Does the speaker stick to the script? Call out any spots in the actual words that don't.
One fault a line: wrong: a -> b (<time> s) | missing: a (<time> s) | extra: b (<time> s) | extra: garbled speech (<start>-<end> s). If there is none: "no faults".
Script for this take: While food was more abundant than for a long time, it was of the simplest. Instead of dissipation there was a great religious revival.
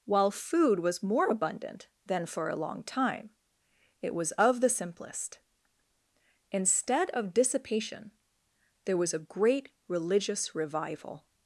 no faults